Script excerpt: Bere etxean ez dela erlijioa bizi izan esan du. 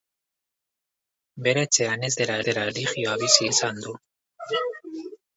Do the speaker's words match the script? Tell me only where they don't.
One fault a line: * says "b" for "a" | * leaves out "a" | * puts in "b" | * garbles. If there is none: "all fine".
* puts in "dela"
* leaves out "izan"